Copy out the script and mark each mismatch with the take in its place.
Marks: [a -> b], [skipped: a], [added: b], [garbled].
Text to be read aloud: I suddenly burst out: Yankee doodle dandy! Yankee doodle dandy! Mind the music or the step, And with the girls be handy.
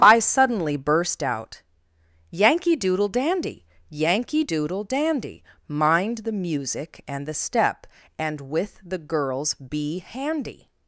I suddenly burst out: Yankee doodle dandy! Yankee doodle dandy! Mind the music [or -> and] the step, And with the girls be handy.